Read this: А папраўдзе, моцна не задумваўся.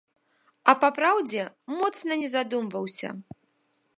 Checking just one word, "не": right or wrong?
right